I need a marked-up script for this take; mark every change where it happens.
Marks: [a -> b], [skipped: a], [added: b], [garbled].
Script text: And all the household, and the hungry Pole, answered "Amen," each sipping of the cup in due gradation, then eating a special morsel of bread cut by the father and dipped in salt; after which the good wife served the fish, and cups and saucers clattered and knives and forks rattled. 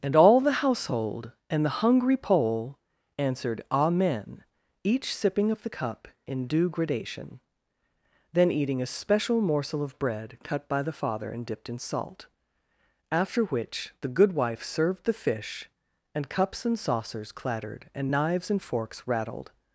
And all the household, and the hungry Pole, answered "Amen," each sipping of the cup in due gradation, then eating a special morsel of bread cut by the father and dipped in salt; after which the good wife served the fish, and cups and saucers clattered and knives and forks rattled.